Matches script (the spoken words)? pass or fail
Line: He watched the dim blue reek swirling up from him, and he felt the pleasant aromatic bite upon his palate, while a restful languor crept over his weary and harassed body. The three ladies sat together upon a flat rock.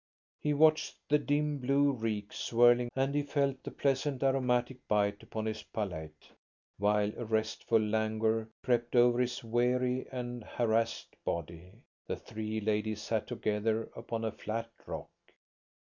fail